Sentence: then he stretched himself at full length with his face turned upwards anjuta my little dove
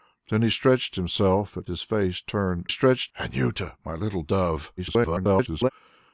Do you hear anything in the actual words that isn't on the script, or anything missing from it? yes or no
yes